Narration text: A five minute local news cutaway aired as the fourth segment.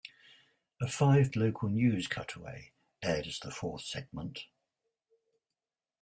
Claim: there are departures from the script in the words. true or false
true